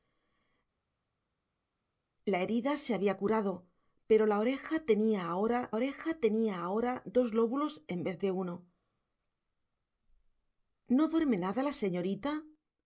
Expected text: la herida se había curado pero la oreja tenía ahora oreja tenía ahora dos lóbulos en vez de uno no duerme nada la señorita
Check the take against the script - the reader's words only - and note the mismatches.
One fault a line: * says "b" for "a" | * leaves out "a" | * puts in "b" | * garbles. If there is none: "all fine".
all fine